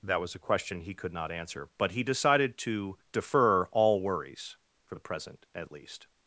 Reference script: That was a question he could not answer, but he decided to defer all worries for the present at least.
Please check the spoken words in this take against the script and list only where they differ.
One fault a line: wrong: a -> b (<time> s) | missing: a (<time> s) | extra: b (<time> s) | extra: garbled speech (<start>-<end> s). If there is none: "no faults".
no faults